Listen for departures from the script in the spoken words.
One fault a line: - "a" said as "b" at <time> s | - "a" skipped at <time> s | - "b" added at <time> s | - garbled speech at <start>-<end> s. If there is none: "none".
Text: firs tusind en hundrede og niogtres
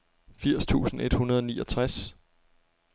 - "en" said as "et" at 1.0 s